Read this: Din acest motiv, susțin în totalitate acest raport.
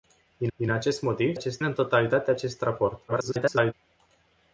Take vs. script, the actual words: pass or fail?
fail